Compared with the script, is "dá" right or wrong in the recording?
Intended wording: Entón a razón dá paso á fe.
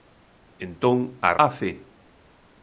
wrong